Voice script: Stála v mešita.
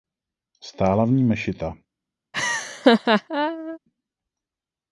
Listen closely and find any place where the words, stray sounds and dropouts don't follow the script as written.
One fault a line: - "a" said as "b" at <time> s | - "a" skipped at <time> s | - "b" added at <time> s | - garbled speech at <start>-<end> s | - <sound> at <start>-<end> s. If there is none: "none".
- "ní" added at 1.1 s
- laugh at 2.3-3.8 s